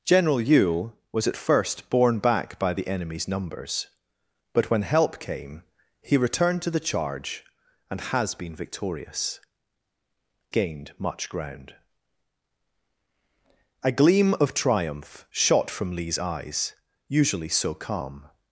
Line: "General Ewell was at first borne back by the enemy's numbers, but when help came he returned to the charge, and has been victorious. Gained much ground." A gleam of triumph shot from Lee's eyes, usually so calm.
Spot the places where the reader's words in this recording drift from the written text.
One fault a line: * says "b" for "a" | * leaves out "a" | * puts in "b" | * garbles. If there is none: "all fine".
all fine